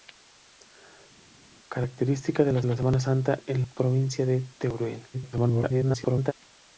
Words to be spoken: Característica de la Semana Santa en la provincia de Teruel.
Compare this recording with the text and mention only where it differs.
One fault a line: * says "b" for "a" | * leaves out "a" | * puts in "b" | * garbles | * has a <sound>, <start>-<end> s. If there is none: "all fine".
* puts in "la"
* leaves out "la"
* garbles